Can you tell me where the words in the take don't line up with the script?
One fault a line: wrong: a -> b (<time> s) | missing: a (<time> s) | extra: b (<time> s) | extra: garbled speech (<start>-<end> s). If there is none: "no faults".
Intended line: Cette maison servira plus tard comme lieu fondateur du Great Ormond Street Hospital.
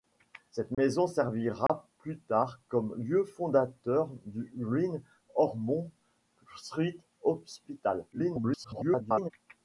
extra: garbled speech (8.1-9.3 s)